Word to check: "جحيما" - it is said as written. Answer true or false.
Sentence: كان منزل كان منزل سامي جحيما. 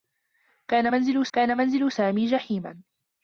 true